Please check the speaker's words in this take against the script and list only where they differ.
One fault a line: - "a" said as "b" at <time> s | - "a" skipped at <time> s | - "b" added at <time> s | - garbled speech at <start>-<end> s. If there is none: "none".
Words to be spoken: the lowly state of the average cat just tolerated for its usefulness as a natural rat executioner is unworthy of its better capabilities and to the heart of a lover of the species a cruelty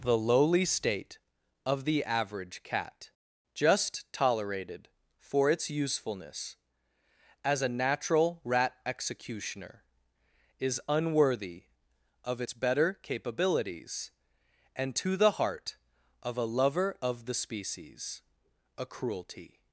none